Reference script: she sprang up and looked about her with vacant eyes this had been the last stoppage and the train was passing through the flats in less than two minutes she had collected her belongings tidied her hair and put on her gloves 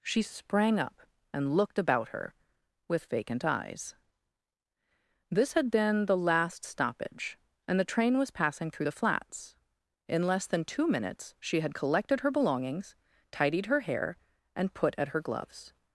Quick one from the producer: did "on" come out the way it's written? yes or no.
no